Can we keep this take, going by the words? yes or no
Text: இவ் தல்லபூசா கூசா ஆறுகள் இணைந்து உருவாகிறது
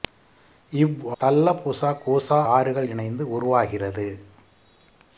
yes